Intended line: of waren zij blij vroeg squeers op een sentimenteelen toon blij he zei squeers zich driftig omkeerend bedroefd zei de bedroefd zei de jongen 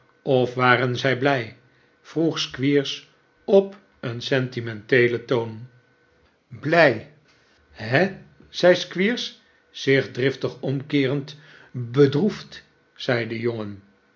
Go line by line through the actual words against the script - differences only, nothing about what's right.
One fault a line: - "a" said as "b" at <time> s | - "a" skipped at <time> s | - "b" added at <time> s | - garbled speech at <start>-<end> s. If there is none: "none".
- "bedroefd zei de" skipped at 13.4 s